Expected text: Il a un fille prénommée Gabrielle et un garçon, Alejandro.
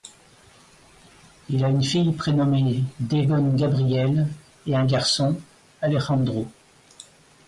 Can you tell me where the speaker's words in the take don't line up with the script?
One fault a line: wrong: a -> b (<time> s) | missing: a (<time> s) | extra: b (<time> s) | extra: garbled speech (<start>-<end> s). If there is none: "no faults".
wrong: un -> une (1.7 s)
extra: Devon (3.0 s)